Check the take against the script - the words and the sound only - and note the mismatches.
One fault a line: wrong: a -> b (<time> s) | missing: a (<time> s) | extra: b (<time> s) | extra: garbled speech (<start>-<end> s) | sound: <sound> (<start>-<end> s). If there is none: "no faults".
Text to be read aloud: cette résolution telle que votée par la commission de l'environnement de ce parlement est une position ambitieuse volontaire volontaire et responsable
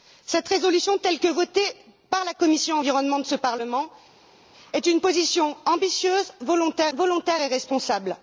no faults